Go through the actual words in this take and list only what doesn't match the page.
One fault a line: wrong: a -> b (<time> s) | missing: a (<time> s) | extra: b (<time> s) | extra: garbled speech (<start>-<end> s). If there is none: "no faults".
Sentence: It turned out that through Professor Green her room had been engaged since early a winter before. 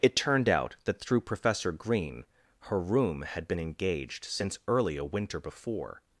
no faults